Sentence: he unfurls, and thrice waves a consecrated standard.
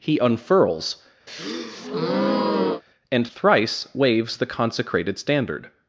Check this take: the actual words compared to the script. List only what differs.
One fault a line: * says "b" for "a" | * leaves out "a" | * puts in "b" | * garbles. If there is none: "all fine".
* says "the" for "a"